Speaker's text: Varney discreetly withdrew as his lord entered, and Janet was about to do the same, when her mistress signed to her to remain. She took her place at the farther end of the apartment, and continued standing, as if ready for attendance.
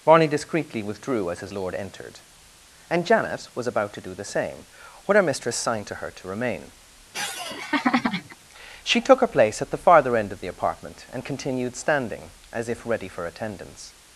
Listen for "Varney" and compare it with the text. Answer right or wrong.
wrong